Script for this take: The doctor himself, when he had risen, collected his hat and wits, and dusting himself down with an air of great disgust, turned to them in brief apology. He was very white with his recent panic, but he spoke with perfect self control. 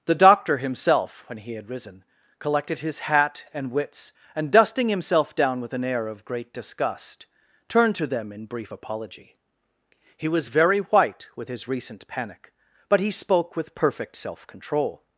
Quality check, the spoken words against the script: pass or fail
pass